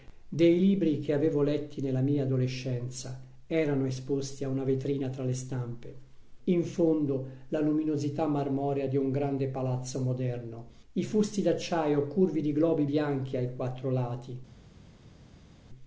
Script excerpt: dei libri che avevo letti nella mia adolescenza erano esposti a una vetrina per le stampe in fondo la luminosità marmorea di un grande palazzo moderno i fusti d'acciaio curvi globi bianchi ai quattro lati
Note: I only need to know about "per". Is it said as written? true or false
false